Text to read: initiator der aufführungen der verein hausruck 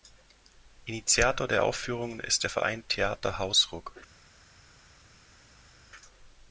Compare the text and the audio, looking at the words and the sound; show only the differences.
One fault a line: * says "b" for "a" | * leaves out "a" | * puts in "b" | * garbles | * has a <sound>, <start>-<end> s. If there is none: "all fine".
* puts in "ist"
* puts in "theater"